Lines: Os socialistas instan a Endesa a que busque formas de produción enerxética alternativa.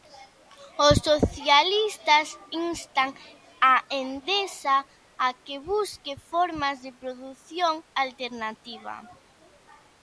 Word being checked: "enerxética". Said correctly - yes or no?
no